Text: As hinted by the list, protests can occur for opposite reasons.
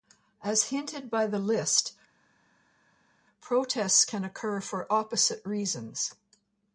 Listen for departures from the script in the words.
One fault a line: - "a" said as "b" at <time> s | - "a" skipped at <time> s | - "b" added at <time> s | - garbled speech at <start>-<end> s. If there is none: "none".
none